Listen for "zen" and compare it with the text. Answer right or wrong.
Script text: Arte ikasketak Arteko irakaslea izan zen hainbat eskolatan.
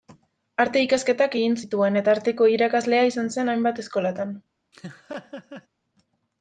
right